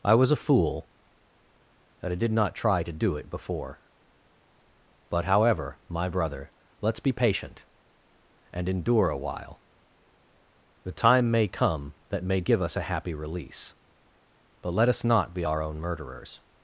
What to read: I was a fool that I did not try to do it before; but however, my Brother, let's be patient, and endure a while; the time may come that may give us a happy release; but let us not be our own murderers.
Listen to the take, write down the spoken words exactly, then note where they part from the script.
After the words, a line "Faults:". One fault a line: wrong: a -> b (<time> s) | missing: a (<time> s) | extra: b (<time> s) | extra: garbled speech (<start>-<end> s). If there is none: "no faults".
I was a fool that I did not try to do it before; but however, my Brother, let's be patient, and endure a while; the time may come that may give us a happy release; but let us not be our own murderers.
Faults:
no faults